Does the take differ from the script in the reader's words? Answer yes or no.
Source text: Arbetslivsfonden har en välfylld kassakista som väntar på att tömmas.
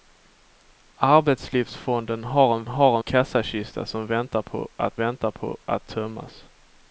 yes